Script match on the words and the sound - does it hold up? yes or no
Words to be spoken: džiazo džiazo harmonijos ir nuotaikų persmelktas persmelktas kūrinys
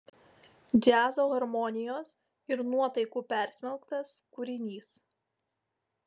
no